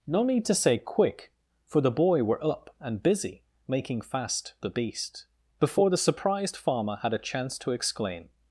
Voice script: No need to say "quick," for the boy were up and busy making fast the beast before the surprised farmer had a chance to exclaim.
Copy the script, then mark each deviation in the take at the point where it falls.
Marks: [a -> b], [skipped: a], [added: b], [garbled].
No need to say "quick," for the boy were up and busy making fast the beast before the surprised farmer had a chance to exclaim.